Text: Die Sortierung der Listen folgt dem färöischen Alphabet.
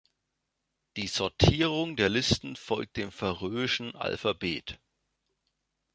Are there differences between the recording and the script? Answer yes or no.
no